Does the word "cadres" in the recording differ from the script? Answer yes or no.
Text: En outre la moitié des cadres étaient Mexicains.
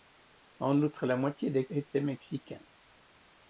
yes